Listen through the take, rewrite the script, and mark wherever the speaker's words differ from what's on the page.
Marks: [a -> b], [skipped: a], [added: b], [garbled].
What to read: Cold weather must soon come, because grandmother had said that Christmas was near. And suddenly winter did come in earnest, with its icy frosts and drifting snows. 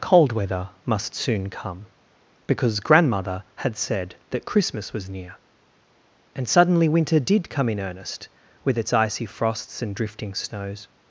Cold weather must soon come, because grandmother had said that Christmas was near. And suddenly winter did come in earnest, with its icy frosts and drifting snows.